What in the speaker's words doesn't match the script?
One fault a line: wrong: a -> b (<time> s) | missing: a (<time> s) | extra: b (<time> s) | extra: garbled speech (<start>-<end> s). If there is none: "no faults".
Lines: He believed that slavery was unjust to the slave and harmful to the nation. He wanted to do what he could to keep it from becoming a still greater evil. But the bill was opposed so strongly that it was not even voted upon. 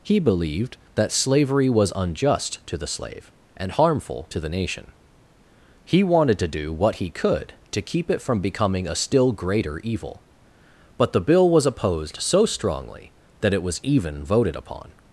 missing: not (13.8 s)